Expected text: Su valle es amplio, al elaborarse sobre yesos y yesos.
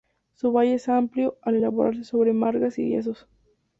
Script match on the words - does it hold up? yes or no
no